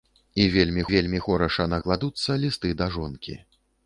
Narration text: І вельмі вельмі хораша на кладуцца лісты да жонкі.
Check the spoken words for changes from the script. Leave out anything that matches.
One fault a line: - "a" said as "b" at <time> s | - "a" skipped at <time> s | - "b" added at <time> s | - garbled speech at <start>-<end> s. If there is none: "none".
none